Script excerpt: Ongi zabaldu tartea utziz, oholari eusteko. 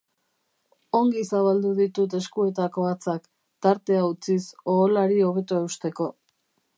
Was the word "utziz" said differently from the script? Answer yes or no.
no